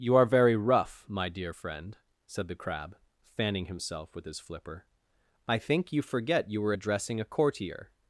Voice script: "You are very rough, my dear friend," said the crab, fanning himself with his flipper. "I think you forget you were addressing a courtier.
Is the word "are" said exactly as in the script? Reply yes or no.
yes